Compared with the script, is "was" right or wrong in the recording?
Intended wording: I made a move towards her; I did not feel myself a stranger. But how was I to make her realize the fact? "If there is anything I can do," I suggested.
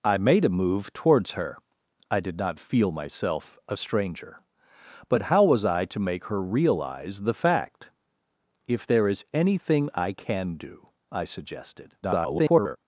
right